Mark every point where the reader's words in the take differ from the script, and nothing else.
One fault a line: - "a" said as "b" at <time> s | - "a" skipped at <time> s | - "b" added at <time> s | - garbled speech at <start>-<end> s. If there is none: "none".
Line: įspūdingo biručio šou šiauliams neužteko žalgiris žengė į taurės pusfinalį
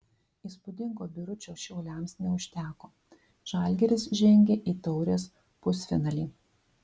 - "šou" skipped at 1.5 s